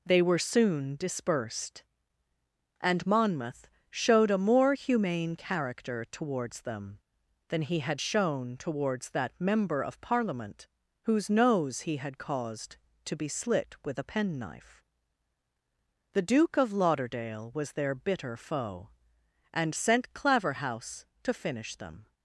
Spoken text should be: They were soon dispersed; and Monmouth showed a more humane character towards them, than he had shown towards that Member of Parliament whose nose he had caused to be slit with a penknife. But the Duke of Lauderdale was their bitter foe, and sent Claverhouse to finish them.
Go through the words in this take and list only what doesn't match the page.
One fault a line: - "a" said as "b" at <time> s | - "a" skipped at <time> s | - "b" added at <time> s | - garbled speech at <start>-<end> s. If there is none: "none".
- "But" skipped at 14.8 s